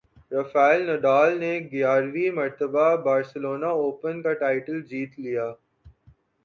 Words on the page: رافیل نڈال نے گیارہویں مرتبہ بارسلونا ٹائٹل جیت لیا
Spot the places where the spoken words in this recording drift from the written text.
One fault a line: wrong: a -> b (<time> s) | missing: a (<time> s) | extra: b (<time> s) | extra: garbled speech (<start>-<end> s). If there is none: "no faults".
extra: اوپن کا (3.8 s)